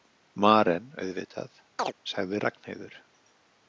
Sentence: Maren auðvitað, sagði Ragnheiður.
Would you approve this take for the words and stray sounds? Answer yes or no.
no